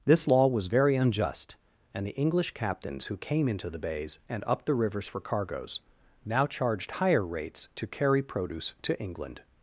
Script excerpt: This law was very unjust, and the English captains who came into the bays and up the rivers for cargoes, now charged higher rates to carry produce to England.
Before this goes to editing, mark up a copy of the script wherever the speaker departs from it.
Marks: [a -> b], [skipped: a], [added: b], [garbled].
This law was very unjust, and the English captains who came into the bays and up the rivers for cargoes, now charged higher rates to carry produce to England.